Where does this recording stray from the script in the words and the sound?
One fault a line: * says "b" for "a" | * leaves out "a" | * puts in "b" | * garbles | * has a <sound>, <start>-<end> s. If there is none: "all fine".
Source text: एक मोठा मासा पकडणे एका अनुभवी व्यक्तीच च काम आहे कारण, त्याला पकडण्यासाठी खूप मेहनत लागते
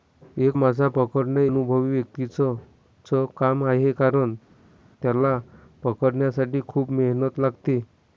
* leaves out "मोठा"
* leaves out "एका"